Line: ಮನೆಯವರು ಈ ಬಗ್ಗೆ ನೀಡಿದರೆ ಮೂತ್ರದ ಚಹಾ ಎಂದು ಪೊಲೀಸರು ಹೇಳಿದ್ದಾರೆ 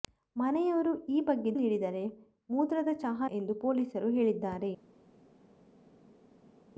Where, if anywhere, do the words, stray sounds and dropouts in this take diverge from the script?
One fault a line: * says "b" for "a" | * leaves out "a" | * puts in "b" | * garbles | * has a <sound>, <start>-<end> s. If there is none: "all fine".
all fine